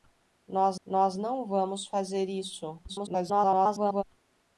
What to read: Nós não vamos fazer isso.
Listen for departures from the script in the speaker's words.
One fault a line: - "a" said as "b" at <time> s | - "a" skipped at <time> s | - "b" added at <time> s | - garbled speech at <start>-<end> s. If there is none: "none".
- "nós" added at 0.8 s
- garbled speech at 2.9-4.0 s